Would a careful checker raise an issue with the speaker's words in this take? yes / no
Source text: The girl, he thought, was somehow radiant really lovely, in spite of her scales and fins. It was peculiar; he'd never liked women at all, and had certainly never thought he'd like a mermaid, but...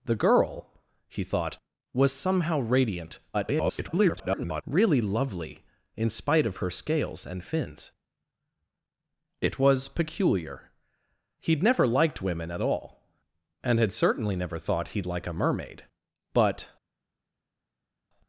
yes